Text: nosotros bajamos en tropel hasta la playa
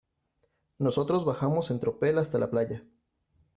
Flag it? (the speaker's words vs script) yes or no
no